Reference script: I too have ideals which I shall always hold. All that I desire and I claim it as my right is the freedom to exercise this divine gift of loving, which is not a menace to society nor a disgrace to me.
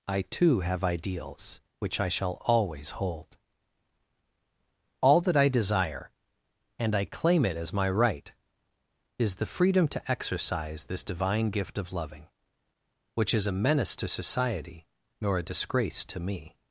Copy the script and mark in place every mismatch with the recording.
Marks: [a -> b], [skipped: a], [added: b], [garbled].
I too have ideals which I shall always hold. All that I desire and I claim it as my right is the freedom to exercise this divine gift of loving, which is [skipped: not] a menace to society nor a disgrace to me.